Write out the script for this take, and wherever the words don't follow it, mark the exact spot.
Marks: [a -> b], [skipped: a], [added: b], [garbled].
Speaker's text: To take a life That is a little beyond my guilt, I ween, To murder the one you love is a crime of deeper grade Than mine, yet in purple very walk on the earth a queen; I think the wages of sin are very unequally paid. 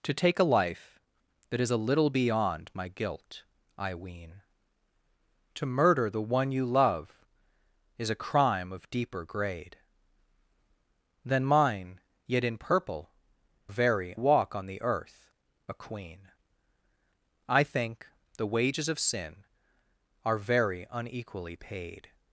To take a life That is a little beyond my guilt, I ween, To murder the one you love is a crime of deeper grade Than mine, yet in purple very walk on the earth a queen; I think the wages of sin are very unequally paid.